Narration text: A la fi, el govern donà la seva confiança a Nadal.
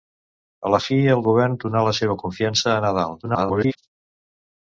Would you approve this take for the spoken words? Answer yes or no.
no